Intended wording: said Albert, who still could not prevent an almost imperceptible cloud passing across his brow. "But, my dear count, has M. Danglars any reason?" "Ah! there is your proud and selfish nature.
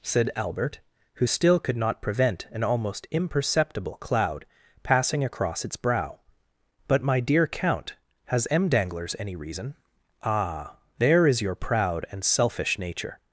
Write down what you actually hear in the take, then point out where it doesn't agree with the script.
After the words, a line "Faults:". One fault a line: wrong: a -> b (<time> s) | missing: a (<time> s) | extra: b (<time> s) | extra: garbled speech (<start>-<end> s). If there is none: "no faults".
said Albert, who still could not prevent an almost imperceptible cloud passing across its brow. "But, my dear count, has M. Danglars any reason?" "Ah! there is your proud and selfish nature.
Faults:
wrong: his -> its (5.6 s)